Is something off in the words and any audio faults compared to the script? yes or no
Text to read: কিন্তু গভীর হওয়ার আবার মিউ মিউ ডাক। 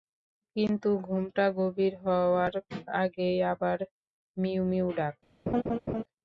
yes